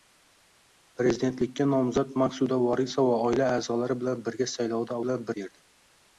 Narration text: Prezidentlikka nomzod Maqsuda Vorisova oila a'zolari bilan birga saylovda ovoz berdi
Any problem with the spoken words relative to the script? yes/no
yes